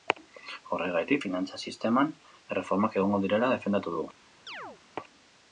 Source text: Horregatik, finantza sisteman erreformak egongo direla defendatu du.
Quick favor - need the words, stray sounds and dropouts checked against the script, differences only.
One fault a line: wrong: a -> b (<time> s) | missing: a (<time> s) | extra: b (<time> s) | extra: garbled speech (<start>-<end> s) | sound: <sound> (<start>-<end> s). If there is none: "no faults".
sound: chirp (4.5-4.8 s)